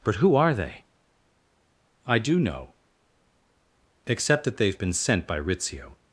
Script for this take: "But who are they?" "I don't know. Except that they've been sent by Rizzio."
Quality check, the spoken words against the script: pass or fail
fail